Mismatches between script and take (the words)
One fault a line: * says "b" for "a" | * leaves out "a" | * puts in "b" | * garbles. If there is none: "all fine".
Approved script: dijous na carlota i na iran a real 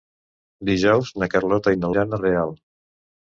all fine